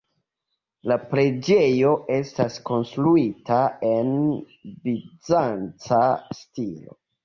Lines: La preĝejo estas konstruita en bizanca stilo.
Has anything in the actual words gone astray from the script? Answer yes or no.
no